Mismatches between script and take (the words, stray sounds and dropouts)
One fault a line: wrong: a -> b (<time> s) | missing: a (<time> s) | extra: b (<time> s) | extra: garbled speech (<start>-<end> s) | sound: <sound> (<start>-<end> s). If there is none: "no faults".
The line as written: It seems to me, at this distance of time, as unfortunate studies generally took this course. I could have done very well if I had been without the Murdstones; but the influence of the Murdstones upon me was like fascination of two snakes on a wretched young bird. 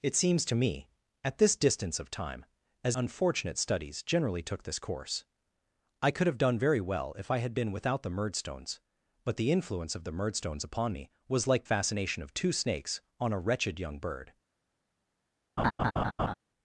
sound: laugh (15.6-16.3 s)